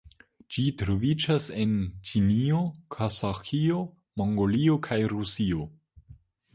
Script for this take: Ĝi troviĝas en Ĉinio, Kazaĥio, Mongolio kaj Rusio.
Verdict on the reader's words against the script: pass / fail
pass